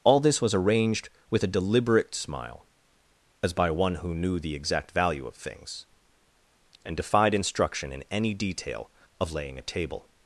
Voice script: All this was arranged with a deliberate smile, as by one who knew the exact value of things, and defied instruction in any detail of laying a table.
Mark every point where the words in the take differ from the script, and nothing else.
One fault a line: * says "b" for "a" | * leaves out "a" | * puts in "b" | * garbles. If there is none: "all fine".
all fine